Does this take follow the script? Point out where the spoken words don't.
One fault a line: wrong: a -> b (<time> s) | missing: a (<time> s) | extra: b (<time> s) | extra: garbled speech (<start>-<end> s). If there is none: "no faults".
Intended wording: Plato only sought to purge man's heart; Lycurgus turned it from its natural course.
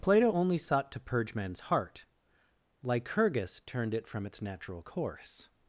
no faults